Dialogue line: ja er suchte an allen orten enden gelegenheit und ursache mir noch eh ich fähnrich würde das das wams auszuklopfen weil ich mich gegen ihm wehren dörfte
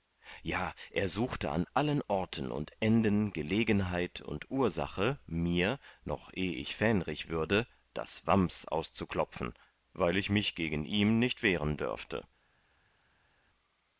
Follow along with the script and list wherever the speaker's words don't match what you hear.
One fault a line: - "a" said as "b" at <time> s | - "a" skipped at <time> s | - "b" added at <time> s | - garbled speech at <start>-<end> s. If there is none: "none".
- "und" added at 2.5 s
- "das" skipped at 8.3 s
- "nicht" added at 11.2 s